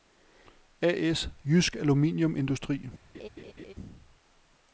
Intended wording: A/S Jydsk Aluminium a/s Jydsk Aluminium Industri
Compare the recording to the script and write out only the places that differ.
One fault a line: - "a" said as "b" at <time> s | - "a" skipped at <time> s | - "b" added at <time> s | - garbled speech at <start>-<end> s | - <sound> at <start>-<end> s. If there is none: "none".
- "a/s Jydsk Aluminium" skipped at 2.4 s
- laugh at 3.1-3.7 s